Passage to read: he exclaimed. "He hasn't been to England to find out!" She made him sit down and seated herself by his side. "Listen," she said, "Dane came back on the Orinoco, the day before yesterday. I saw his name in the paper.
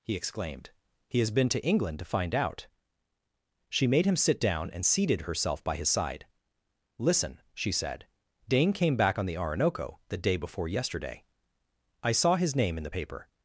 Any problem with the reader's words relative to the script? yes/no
yes